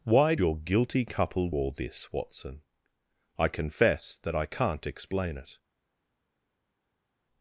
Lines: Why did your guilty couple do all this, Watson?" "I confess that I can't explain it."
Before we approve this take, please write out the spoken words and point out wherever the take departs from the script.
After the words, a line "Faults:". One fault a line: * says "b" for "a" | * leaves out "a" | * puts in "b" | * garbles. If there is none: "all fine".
Why your guilty couple all this, Watson?" "I confess that I can't explain it."
Faults:
* leaves out "did"
* leaves out "do"